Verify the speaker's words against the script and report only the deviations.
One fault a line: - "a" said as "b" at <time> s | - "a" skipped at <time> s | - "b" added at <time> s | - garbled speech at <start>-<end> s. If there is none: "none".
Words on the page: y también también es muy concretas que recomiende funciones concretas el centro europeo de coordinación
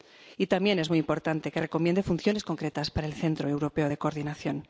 - "también" skipped at 0.8 s
- "concretas" said as "importante" at 1.0 s
- "para" added at 2.9 s